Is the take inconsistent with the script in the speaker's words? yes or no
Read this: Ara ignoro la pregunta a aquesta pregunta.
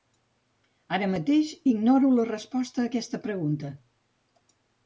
yes